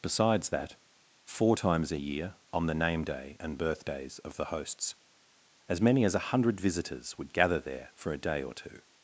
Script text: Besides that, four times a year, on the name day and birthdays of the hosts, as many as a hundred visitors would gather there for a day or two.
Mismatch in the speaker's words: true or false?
false